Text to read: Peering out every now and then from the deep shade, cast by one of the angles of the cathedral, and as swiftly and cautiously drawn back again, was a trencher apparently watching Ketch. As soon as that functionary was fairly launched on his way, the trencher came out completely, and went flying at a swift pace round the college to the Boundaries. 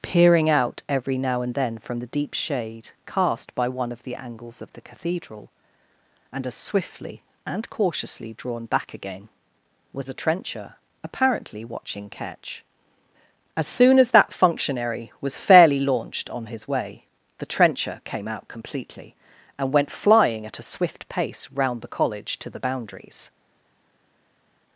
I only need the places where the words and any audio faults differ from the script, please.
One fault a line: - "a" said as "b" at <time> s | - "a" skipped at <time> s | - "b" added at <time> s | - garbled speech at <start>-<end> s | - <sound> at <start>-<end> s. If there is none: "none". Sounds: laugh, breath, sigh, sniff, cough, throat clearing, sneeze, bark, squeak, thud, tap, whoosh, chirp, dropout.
none